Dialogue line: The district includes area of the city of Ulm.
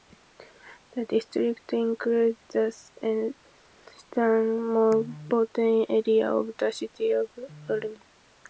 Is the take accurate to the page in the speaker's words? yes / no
no